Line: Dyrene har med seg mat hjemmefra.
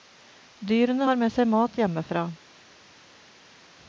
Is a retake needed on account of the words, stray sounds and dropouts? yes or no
no